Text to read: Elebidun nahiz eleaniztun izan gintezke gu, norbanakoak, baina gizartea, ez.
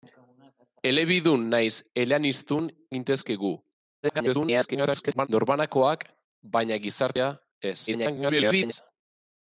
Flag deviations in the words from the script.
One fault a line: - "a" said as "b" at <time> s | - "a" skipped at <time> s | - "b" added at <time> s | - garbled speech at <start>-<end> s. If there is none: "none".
- "izan" skipped at 2.7 s
- garbled speech at 4.0-5.3 s
- garbled speech at 7.9-8.7 s